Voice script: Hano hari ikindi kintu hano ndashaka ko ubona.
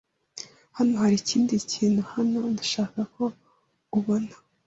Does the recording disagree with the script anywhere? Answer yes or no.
no